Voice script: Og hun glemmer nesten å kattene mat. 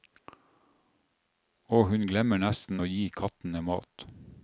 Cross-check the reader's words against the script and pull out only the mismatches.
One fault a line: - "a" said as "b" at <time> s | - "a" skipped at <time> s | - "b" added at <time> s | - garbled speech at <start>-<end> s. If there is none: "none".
- "gi" added at 2.9 s